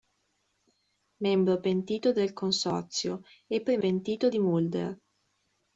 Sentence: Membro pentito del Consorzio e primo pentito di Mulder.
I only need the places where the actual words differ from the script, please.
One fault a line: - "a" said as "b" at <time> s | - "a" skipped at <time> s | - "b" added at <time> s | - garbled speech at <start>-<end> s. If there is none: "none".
none